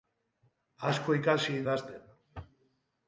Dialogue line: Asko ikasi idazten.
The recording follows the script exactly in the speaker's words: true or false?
true